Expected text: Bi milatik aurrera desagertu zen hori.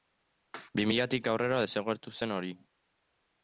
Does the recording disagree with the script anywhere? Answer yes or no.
no